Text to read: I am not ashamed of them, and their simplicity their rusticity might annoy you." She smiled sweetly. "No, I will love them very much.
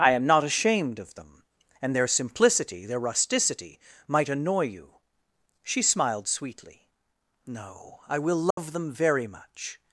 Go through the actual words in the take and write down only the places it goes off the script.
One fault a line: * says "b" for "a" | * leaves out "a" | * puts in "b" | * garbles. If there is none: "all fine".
all fine